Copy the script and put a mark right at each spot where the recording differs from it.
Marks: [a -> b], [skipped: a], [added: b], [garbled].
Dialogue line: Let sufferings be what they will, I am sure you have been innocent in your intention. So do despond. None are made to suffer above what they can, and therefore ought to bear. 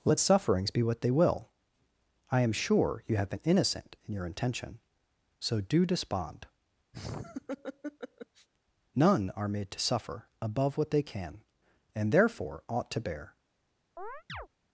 Let sufferings be what they will, I am sure you have been innocent in your intention. So do despond. None are made to suffer above what they can, and therefore ought to bear.